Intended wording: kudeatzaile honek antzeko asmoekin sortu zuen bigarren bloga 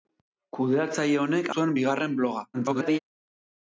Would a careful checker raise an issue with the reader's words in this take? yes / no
yes